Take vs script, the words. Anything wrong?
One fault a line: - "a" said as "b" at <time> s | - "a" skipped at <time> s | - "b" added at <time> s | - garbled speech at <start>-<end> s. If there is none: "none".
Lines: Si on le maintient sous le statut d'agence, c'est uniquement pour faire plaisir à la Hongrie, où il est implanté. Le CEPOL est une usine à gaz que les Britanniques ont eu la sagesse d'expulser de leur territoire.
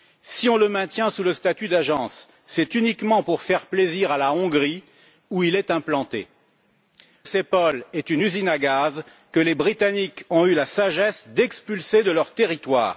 - "Le" skipped at 6.3 s